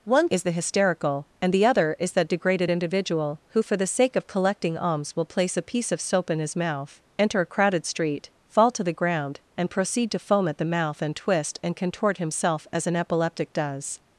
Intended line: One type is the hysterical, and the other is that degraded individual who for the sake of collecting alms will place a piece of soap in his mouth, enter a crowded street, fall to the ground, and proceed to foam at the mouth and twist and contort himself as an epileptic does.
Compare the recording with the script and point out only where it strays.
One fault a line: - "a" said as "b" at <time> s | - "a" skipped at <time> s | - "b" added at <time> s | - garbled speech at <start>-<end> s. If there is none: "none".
- "type" skipped at 0.3 s